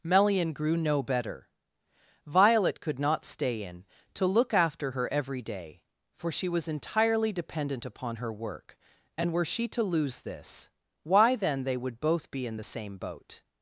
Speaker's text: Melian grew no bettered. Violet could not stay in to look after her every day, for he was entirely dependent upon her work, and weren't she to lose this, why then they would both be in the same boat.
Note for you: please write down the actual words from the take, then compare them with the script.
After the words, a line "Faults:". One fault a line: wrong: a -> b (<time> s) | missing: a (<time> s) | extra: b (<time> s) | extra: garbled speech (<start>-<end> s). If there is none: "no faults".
Melian grew no better. Violet could not stay in to look after her every day, for she was entirely dependent upon her work, and were she to lose this, why then they would both be in the same boat.
Faults:
wrong: bettered -> better (1.0 s)
wrong: he -> she (6.3 s)
wrong: weren't -> were (9.3 s)